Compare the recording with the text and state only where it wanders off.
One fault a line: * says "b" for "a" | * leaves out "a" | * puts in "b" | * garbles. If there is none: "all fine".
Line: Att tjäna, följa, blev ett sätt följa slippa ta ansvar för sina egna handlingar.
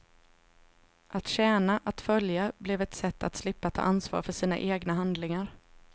* puts in "att"
* says "att" for "följa"